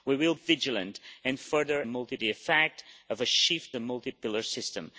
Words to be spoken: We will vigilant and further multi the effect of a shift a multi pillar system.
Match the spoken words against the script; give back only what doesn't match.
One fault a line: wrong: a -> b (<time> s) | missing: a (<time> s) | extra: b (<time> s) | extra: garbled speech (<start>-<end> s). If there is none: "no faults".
no faults